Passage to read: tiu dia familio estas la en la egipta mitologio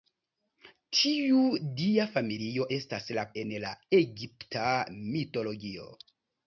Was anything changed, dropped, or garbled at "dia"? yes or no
no